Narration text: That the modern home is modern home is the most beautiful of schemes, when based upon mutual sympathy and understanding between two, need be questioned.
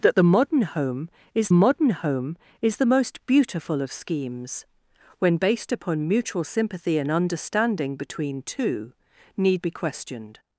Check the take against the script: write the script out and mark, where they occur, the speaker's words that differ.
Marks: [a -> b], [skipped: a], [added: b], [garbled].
That the modern home is modern home is the most beautiful of schemes, when based upon mutual sympathy and understanding between two, need be questioned.